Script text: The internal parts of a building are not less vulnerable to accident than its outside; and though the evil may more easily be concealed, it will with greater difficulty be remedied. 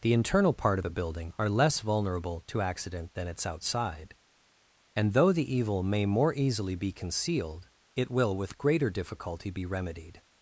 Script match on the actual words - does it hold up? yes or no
no